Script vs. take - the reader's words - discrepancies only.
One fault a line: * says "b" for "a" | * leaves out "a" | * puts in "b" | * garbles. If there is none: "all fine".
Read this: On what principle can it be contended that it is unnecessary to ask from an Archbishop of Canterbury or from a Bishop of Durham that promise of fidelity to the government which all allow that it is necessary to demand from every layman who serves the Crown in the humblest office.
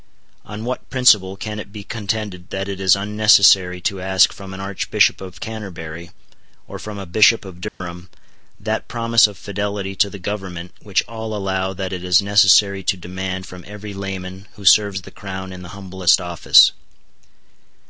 all fine